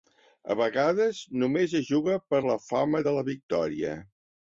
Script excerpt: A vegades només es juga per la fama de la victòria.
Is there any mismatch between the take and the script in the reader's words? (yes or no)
no